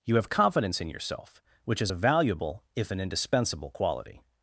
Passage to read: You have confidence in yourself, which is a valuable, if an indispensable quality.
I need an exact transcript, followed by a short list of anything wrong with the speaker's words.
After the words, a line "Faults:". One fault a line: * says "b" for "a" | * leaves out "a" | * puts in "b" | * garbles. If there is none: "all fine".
You have confidence in yourself, which is a valuable, if an indispensable quality.
Faults:
all fine